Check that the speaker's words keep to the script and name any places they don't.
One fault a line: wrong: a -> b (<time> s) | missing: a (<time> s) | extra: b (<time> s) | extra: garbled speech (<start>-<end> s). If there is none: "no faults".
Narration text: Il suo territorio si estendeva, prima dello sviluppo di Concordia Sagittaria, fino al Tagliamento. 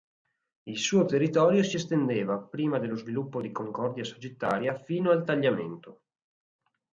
no faults